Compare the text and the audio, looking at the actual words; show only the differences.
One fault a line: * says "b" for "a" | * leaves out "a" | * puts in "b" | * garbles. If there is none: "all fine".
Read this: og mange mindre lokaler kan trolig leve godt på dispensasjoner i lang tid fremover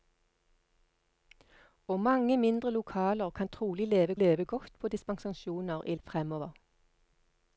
* puts in "leve"
* leaves out "lang tid"